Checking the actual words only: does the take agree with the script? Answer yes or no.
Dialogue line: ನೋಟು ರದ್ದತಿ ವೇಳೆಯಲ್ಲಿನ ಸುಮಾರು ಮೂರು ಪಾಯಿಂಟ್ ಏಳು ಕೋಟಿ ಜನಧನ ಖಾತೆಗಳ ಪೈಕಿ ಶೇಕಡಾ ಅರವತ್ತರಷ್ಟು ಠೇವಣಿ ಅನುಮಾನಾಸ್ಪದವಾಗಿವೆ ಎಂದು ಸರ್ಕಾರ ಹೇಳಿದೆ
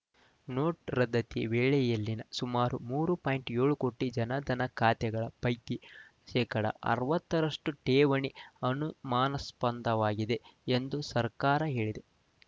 yes